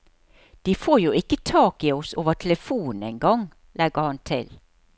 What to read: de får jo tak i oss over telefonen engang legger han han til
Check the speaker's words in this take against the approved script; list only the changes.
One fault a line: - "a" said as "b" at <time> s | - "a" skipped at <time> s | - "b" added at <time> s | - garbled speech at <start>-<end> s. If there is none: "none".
- "ikke" added at 1.1 s
- "han" skipped at 4.2 s